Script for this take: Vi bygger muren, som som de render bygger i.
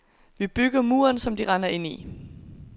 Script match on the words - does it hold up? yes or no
no